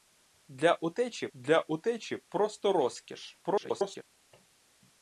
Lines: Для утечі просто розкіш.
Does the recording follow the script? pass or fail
fail